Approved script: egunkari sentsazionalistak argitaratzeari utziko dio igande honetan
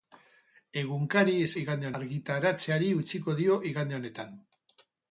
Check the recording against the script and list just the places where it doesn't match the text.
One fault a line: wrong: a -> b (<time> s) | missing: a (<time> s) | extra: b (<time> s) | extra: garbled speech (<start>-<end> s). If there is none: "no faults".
wrong: sentsazionalistak -> igande (1.6 s)